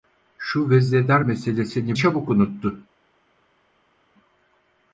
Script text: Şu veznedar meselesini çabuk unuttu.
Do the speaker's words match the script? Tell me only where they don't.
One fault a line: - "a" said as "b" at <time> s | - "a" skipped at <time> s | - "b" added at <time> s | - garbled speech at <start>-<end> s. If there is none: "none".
none